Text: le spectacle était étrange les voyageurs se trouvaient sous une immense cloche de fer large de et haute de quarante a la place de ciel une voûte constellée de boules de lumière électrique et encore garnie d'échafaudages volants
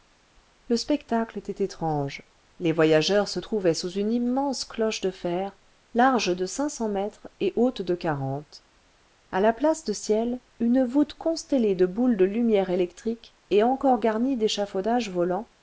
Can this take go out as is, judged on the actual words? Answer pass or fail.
fail